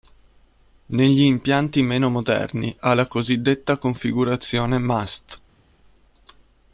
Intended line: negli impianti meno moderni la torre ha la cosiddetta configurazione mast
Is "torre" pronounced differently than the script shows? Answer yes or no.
yes